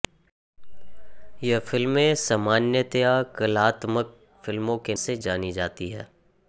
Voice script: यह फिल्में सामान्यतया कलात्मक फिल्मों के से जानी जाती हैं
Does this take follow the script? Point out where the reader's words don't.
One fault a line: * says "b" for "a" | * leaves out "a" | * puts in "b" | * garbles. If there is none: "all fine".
all fine